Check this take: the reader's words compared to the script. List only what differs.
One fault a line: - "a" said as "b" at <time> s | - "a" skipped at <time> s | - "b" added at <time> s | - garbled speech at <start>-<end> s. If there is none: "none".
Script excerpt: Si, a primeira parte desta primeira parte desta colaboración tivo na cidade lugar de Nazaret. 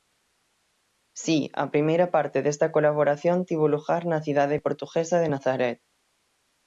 - "primeira parte desta" skipped at 2.7 s
- "lugar" added at 3.8 s
- "lugar" said as "portuguesa" at 4.7 s